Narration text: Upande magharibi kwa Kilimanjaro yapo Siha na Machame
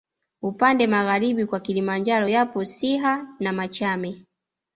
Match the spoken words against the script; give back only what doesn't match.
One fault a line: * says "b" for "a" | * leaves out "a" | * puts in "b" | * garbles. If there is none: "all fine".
all fine